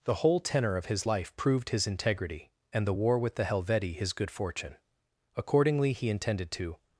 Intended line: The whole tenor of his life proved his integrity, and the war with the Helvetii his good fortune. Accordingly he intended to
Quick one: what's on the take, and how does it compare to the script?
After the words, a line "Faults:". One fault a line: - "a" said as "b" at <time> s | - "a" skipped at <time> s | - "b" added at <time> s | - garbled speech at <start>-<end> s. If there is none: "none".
The whole tenor of his life proved his integrity, and the war with the Helvetii his good fortune. Accordingly he intended to
Faults:
none